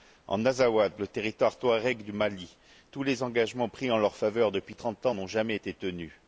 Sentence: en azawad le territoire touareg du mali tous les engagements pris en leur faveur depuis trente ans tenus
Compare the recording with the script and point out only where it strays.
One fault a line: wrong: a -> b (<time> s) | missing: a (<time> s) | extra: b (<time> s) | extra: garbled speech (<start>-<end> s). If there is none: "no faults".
extra: n'ont jamais été (5.1 s)